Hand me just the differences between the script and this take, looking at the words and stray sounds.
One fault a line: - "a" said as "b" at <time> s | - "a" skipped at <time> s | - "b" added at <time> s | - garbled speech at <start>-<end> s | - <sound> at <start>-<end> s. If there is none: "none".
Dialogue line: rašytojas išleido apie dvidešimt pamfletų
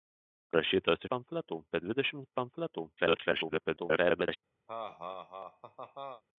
- "išleido" said as "pamfletų" at 1.1 s
- garbled speech at 3.0-4.4 s
- laugh at 4.7-6.2 s